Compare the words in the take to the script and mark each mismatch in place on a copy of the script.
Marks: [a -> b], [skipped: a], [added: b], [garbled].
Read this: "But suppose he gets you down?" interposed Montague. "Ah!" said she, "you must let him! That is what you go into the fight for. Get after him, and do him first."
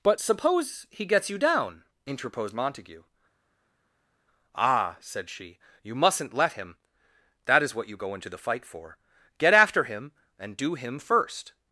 "But suppose he gets you down?" interposed Montague. "Ah!" said she, "you [must -> mustn't] let him! That is what you go into the fight for. Get after him, and do him first."